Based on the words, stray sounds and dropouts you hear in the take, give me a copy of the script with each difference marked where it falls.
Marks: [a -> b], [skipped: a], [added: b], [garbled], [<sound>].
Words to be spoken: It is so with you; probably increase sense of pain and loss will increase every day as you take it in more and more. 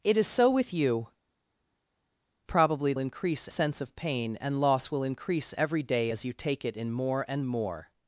It is so with you; probably increase sense of pain and loss will increase every day as you take it in more and more.